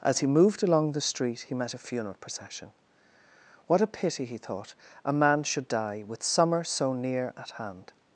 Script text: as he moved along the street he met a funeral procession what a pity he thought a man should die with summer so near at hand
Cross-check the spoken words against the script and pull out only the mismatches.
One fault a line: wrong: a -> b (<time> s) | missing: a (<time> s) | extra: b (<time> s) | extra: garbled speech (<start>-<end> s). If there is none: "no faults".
no faults